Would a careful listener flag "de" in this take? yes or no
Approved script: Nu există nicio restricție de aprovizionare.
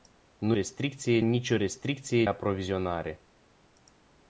yes